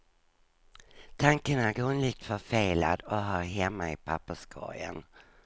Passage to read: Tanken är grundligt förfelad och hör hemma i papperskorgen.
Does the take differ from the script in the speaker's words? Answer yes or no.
no